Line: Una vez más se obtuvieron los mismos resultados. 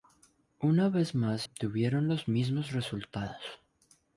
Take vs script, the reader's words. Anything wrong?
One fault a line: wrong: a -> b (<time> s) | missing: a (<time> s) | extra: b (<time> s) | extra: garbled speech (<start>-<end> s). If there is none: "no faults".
missing: se (1.4 s)